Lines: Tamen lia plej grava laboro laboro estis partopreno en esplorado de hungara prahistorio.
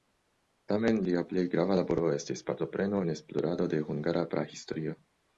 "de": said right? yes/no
yes